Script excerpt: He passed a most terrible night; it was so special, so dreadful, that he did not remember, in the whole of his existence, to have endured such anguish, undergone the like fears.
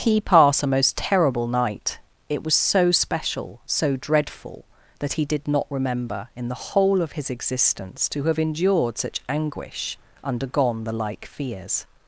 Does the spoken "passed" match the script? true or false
false